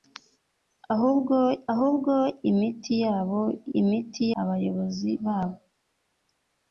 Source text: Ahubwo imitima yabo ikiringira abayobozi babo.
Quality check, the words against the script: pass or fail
fail